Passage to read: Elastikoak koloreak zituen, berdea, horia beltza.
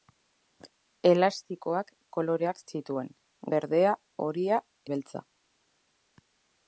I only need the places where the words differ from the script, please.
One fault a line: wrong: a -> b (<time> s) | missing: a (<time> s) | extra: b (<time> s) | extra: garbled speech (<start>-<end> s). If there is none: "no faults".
no faults